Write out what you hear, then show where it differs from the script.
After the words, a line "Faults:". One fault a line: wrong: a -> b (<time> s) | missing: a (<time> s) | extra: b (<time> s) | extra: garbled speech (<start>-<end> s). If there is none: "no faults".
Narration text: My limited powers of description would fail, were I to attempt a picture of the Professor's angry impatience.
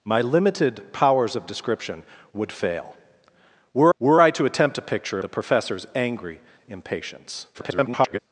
My limited powers of description would fail, were were I to attempt a picture the Professor's angry impatience. [garbled]
Faults:
extra: were (4.0 s)
missing: of (5.2 s)
extra: garbled speech (7.5-8.2 s)